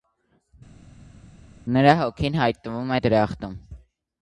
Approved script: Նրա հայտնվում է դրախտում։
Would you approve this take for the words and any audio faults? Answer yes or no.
no